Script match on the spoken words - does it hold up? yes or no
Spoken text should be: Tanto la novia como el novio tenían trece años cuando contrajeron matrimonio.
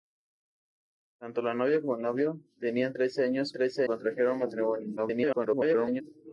no